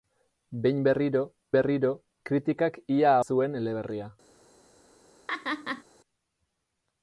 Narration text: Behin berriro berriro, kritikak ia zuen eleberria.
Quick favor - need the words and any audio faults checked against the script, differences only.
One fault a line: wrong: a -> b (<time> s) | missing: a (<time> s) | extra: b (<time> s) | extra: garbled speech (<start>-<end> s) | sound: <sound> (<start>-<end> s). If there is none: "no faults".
sound: laugh (5.3-5.8 s)